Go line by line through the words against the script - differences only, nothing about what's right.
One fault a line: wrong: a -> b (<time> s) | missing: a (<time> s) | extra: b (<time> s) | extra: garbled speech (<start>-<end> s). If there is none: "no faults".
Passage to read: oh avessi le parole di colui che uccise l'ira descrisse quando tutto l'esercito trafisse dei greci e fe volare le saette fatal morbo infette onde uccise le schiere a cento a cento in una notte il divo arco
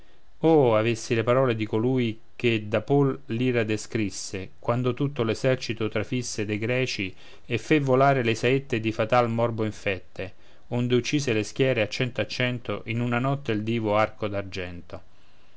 wrong: uccise -> d'apol (2.7 s)
extra: di (8.8 s)